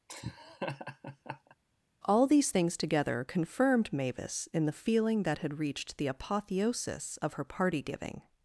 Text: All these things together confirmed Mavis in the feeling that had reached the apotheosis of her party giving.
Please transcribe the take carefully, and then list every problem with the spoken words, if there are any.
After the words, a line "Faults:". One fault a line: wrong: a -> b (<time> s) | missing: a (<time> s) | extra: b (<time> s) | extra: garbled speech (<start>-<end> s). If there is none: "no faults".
All these things together confirmed Mavis in the feeling that had reached the apotheosis of her party giving.
Faults:
no faults